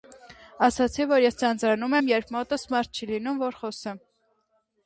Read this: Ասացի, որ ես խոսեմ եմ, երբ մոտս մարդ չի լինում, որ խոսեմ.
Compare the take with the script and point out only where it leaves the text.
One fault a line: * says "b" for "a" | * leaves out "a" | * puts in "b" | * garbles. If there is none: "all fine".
* says "ձանձրանում" for "խոսեմ"